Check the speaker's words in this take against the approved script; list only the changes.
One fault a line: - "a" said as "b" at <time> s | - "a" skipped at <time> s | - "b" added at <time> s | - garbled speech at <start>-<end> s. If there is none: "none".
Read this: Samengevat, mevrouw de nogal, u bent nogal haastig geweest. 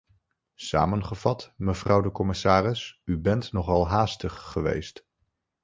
- "nogal" said as "commissaris" at 2.1 s